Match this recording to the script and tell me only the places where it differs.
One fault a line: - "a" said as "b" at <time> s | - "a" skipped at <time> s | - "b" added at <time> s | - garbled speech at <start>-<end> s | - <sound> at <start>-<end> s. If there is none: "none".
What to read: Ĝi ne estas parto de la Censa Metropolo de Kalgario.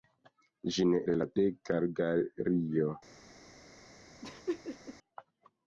- "estas parto" skipped at 1.0 s
- "Censa Metropolo" skipped at 1.3 s
- laugh at 4.2-5.0 s